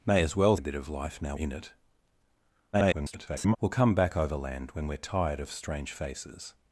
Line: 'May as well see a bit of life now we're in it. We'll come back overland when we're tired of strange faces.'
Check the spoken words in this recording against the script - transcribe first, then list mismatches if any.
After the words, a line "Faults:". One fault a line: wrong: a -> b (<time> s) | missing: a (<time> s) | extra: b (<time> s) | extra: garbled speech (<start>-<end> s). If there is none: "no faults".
'May as well a bit of life now in it. [garbled] We'll come back overland when we're tired of strange faces.'
Faults:
missing: see (0.6 s)
missing: we're (1.3 s)
extra: garbled speech (2.7-3.6 s)